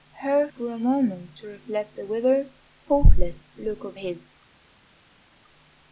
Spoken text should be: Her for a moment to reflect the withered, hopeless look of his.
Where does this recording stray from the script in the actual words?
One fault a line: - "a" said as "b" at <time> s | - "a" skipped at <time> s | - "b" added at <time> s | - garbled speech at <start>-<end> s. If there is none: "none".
none